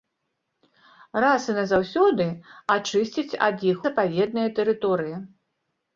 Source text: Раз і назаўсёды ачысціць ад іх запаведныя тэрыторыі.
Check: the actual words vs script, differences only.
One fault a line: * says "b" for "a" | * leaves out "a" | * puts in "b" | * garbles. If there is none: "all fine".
all fine